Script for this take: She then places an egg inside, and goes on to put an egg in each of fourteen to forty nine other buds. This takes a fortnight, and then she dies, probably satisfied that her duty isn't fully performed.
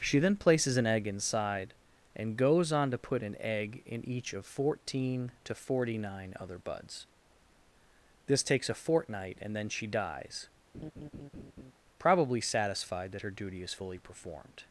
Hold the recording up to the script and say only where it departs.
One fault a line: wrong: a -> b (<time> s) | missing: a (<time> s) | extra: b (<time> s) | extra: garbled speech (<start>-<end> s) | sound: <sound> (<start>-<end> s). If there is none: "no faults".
sound: laugh (10.7-11.7 s)
wrong: isn't -> is (13.6 s)